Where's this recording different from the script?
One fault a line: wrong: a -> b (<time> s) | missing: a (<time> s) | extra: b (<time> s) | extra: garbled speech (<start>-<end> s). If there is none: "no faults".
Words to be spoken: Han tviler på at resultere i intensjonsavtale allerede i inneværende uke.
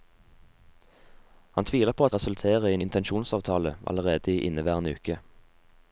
no faults